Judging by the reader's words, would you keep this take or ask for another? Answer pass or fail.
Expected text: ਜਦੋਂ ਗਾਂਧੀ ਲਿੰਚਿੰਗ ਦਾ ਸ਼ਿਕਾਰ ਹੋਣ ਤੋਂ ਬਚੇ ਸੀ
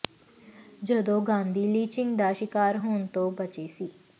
pass